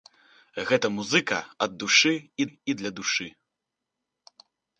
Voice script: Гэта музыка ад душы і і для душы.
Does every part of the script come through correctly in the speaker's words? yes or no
yes